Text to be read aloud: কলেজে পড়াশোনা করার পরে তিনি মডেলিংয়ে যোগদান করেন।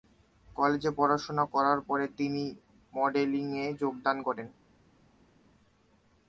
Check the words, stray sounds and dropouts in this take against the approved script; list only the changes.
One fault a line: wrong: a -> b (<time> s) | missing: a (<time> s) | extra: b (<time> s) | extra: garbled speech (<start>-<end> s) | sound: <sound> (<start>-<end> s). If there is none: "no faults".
no faults